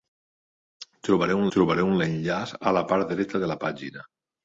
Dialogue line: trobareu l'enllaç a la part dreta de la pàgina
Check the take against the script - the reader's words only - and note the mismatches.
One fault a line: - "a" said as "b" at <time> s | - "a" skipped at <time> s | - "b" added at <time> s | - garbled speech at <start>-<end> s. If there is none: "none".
- "trobareu" added at 1.5 s